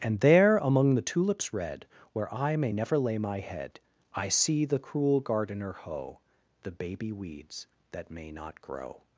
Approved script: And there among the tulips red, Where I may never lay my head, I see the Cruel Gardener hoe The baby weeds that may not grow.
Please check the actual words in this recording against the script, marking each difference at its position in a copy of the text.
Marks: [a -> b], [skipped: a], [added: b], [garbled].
And there among the tulips red, Where I may never lay my head, I see the Cruel Gardener hoe The baby weeds that may not grow.